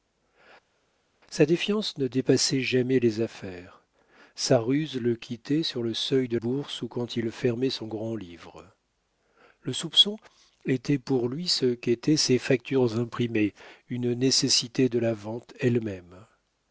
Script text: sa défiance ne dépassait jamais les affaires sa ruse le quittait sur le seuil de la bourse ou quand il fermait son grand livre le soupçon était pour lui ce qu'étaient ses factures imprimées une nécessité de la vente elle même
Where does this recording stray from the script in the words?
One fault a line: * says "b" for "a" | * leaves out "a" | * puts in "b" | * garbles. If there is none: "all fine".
* leaves out "la"